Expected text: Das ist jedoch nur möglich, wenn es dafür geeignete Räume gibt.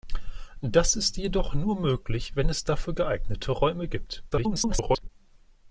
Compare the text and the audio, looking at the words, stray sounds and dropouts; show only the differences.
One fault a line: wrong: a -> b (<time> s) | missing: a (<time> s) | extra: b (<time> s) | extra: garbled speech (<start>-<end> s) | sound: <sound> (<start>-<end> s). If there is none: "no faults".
extra: garbled speech (4.3-5.1 s)